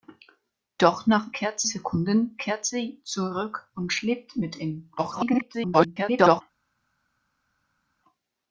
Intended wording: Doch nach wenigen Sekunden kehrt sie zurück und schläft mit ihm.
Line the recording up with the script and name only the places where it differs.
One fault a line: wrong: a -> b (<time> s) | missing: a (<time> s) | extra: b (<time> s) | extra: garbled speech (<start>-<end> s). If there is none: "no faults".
wrong: wenigen -> kehrt (1.3 s)
extra: garbled speech (5.0-6.4 s)